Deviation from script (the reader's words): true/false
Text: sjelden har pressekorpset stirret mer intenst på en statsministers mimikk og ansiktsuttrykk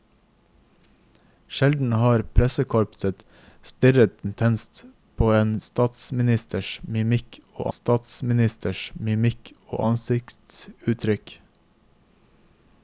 true